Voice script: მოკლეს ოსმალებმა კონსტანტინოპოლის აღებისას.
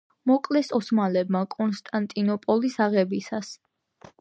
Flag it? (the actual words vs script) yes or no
no